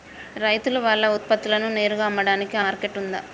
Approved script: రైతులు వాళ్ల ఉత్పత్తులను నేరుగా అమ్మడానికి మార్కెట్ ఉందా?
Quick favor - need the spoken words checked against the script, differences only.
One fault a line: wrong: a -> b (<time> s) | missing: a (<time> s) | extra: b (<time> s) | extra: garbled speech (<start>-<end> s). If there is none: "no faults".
no faults